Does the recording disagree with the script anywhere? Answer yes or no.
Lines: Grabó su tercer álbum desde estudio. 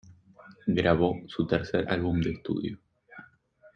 yes